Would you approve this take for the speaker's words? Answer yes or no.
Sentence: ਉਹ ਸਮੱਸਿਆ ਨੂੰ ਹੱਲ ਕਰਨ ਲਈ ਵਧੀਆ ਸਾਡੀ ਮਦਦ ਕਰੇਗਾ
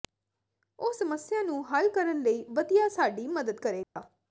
yes